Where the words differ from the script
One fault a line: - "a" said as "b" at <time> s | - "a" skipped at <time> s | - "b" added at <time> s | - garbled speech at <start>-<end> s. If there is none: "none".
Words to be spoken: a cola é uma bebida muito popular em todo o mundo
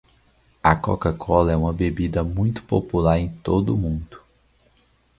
- "coca" added at 0.7 s